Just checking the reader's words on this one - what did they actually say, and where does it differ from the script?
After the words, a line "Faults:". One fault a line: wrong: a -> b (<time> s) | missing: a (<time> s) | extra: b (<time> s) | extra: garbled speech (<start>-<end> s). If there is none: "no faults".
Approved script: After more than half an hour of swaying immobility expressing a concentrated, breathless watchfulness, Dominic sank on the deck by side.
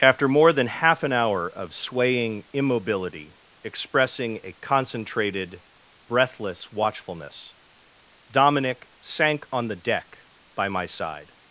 After more than half an hour of swaying immobility expressing a concentrated, breathless watchfulness, Dominic sank on the deck by my side.
Faults:
extra: my (10.7 s)